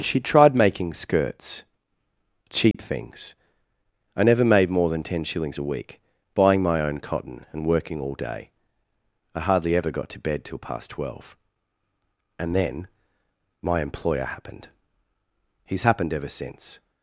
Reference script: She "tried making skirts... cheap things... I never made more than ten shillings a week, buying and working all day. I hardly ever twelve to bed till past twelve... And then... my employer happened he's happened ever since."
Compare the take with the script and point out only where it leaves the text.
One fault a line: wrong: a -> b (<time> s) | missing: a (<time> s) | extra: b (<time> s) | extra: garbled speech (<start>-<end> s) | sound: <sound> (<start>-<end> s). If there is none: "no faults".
sound: dropout (2.7-2.7 s)
extra: my own cotton (6.6 s)
wrong: twelve -> got (9.9 s)